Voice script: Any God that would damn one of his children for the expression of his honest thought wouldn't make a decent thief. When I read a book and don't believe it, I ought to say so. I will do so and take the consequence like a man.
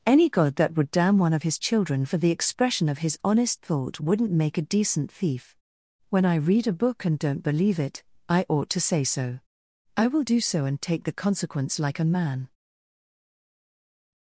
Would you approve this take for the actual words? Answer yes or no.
yes